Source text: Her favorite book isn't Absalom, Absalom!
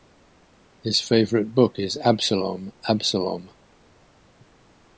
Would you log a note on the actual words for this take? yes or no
yes